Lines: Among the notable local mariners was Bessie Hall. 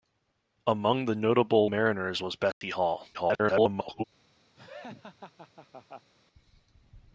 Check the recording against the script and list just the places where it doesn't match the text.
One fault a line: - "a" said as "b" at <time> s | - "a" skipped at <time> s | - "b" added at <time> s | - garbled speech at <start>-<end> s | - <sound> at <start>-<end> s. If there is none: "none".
- "local" skipped at 1.7 s
- dropout at 2.5-2.6 s
- garbled speech at 3.1-4.0 s
- laugh at 4.5-6.1 s